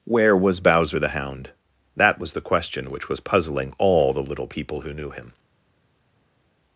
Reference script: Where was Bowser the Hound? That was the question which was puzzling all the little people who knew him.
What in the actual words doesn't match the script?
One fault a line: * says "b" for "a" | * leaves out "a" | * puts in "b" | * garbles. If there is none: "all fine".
all fine